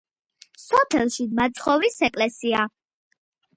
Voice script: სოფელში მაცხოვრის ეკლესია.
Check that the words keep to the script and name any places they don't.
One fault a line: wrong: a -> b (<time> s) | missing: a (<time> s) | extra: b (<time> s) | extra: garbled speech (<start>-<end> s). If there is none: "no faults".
no faults